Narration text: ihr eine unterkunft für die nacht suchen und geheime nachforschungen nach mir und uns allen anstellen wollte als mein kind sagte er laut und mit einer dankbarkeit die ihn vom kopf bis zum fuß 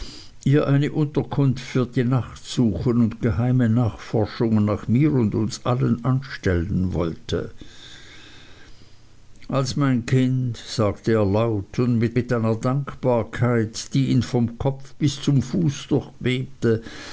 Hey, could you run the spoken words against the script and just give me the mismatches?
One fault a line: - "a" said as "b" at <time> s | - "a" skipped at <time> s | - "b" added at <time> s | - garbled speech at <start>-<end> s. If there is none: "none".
- "mit" added at 12.1 s